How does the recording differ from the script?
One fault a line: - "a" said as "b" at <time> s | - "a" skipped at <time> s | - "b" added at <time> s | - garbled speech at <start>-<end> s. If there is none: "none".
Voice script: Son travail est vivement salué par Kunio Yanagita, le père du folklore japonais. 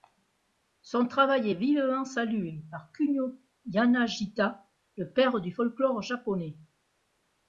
none